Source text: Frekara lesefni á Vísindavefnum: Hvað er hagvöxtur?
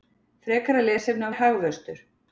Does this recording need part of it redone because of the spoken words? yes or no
yes